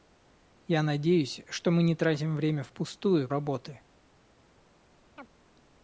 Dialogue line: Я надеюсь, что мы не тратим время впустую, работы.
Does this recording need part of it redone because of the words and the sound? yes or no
yes